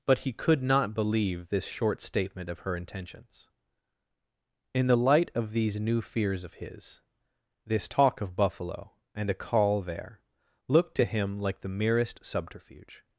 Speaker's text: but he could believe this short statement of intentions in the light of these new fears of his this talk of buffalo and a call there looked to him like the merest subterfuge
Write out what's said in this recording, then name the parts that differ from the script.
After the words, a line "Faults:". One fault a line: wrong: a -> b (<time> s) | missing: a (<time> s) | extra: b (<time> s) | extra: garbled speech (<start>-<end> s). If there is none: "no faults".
but he could not believe this short statement of her intentions in the light of these new fears of his this talk of buffalo and a call there looked to him like the merest subterfuge
Faults:
extra: not (0.6 s)
extra: her (2.6 s)